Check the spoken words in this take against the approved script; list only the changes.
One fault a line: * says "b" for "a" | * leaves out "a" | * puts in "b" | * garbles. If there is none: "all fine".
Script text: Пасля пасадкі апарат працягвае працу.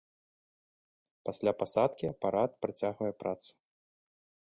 all fine